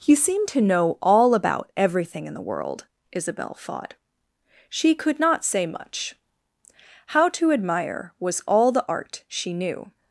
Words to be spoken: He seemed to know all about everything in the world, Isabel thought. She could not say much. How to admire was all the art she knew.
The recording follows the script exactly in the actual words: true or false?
true